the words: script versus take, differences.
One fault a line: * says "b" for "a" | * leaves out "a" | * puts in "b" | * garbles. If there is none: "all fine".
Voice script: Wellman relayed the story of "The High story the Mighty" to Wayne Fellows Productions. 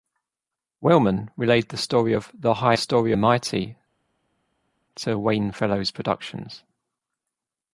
all fine